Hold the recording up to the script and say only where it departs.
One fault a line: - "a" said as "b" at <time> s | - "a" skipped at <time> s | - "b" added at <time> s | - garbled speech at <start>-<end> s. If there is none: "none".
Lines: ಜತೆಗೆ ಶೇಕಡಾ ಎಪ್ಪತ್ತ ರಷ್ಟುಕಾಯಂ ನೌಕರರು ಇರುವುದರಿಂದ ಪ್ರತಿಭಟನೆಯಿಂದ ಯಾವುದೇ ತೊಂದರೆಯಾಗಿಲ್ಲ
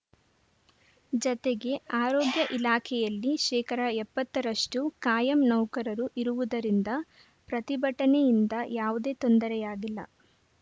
- "ಆರೋಗ್ಯ ಇಲಾಖೆಯಲ್ಲಿ" added at 2.0 s